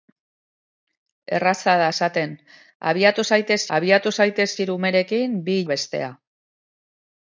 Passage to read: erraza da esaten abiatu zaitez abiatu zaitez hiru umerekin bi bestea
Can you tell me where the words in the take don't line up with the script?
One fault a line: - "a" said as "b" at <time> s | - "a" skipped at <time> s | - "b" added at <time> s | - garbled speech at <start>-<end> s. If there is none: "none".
none